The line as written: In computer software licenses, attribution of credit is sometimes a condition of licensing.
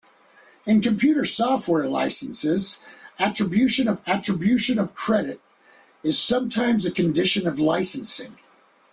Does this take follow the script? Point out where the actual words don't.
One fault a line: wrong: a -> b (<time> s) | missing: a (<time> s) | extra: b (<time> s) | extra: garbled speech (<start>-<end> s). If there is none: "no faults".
extra: attribution of (4.1 s)